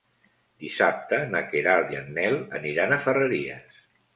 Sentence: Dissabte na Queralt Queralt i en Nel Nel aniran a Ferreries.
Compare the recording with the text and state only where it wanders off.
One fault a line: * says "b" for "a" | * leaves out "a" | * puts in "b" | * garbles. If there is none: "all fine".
* leaves out "Queralt"
* leaves out "Nel"